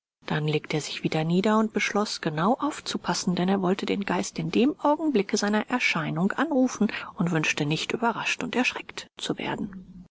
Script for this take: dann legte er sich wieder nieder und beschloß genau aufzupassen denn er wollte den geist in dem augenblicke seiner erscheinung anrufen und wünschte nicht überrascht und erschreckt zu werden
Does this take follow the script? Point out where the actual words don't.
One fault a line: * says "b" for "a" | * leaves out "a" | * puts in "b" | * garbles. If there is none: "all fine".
all fine